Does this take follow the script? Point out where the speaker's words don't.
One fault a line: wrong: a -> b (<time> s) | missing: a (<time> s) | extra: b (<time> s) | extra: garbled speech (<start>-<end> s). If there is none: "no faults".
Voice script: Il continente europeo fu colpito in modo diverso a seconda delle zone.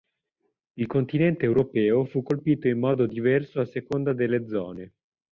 no faults